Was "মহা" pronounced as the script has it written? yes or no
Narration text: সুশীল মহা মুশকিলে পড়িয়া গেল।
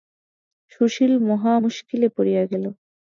yes